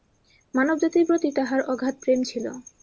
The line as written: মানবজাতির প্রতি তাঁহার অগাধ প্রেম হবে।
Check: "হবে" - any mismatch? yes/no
yes